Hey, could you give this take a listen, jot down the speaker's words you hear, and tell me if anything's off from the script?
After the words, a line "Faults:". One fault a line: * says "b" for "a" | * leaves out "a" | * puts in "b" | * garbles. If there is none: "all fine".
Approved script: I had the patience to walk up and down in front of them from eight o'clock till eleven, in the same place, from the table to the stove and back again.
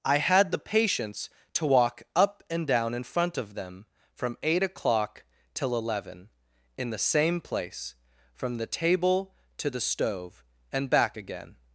I had the patience to walk up and down in front of them from eight o'clock till eleven, in the same place, from the table to the stove and back again.
Faults:
all fine